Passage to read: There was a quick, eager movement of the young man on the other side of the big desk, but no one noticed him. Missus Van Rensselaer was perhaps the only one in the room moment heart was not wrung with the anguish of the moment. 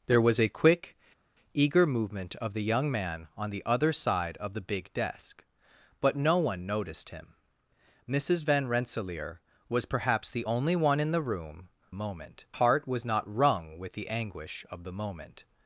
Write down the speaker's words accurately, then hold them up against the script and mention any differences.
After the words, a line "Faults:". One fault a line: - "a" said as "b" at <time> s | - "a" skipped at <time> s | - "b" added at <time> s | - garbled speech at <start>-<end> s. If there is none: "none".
There was a quick, eager movement of the young man on the other side of the big desk, but no one noticed him. Missus Van Rensselaer was perhaps the only one in the room moment heart was not wrung with the anguish of the moment.
Faults:
none